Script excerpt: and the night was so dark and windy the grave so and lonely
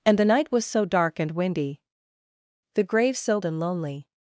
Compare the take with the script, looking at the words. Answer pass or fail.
pass